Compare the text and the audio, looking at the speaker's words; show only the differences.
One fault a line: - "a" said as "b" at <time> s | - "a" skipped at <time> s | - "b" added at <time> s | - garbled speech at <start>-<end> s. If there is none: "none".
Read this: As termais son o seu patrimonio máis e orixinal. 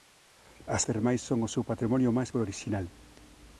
none